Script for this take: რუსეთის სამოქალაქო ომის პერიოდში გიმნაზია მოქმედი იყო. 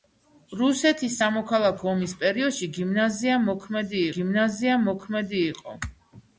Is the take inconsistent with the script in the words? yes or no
yes